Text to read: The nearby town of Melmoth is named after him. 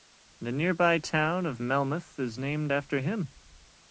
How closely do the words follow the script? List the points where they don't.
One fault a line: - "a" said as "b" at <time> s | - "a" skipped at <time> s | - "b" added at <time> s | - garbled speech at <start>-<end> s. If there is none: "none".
none